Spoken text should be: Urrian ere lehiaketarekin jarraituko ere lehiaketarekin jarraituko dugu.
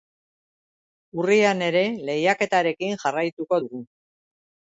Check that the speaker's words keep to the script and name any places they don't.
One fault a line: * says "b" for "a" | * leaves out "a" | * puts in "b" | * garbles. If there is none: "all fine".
* leaves out "ere lehiaketarekin jarraituko"